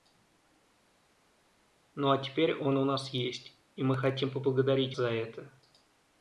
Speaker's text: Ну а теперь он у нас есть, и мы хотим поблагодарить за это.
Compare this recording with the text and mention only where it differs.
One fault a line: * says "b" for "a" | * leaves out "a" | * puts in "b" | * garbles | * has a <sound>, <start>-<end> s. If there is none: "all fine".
all fine